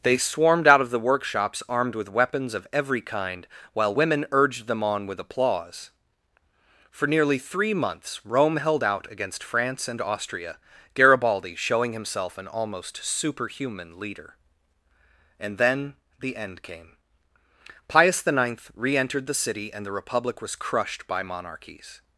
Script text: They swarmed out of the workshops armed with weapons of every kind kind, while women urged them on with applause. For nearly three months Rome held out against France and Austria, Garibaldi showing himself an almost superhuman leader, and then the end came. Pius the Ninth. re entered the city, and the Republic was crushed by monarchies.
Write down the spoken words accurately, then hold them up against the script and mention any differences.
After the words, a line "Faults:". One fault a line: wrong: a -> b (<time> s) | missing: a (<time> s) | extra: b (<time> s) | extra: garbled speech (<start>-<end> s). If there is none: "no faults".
They swarmed out of the workshops armed with weapons of every kind, while women urged them on with applause. For nearly three months Rome held out against France and Austria, Garibaldi showing himself an almost superhuman leader, and then the end came. Pius the Ninth. re entered the city, and the Republic was crushed by monarchies.
Faults:
missing: kind (3.5 s)